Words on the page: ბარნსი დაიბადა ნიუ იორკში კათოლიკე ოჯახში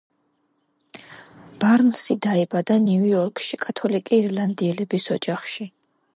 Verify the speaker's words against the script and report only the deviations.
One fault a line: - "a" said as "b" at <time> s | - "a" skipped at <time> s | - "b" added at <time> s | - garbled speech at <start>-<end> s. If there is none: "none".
- "ირლანდიელების" added at 4.2 s